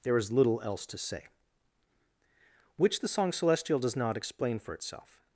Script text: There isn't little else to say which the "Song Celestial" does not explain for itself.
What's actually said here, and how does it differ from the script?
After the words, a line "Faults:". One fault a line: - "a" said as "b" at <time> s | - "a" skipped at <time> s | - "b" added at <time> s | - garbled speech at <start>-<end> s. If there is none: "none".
There is little else to say which the "Song Celestial" does not explain for itself.
Faults:
- "isn't" said as "is" at 0.2 s